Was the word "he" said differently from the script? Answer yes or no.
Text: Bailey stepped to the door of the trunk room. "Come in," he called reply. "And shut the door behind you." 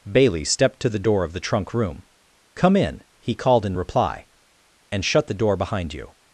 no